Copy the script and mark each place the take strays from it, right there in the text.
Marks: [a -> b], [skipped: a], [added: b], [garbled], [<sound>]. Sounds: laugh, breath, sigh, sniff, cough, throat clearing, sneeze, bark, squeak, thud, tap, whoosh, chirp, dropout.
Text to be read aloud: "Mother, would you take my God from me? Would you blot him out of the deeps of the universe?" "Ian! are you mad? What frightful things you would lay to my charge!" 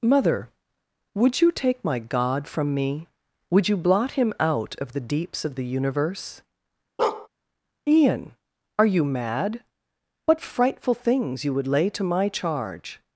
"Mother, would you take my God from me? Would you blot him out of the deeps of the universe?" [bark] "Ian! are you mad? What frightful things you would lay to my charge!"